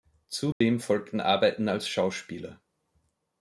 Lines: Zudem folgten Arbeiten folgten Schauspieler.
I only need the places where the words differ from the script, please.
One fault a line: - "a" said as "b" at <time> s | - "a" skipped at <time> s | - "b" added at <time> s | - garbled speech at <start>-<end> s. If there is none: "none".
- "folgten" said as "als" at 1.7 s